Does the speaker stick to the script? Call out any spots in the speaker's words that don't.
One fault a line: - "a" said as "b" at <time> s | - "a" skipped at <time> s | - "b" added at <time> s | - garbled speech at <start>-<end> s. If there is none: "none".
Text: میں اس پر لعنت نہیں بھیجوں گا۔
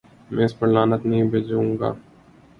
none